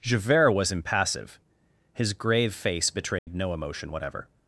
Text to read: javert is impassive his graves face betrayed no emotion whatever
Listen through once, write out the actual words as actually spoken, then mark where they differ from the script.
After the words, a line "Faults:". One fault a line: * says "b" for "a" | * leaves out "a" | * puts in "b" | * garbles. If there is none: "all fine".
javert was impassive his grave face betrayed no emotion whatever
Faults:
* says "was" for "is"
* says "grave" for "graves"